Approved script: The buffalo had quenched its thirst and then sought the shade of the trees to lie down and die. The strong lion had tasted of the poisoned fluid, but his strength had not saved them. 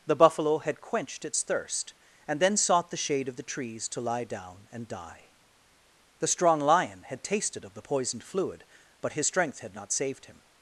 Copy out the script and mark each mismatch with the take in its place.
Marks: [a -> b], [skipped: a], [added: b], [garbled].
The buffalo had quenched its thirst and then sought the shade of the trees to lie down and die. The strong lion had tasted of the poisoned fluid, but his strength had not saved [them. -> him]